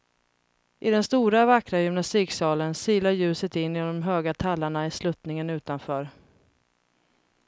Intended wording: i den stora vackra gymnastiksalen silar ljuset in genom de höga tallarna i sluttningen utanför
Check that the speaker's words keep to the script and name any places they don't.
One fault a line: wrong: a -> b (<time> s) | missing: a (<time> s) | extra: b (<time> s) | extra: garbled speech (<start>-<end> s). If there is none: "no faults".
no faults